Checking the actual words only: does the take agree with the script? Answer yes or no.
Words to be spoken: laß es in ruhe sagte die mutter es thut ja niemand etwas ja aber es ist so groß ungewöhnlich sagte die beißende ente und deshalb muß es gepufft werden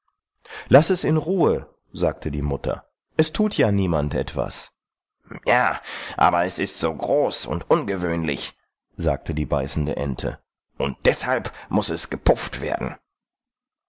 no